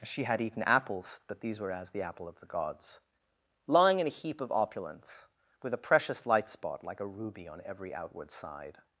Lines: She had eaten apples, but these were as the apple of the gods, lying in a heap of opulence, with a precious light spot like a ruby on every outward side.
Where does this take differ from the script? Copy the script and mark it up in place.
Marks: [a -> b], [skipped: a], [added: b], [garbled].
She had eaten apples, but these were as the apple of the gods, lying in a heap of opulence, with a precious light spot like a ruby on every outward side.